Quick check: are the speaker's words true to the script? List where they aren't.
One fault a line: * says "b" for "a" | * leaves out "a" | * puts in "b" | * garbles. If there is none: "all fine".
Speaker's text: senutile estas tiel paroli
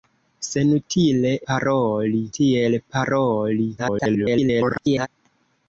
* says "paroli" for "estas"
* garbles